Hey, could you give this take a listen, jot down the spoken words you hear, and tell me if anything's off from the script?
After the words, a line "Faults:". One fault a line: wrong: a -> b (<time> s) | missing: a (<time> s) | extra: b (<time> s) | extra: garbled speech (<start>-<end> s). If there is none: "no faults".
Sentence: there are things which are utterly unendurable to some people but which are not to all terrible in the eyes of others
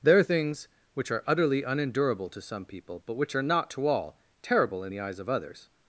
there are things which are utterly unendurable to some people but which are not to all terrible in the eyes of others
Faults:
no faults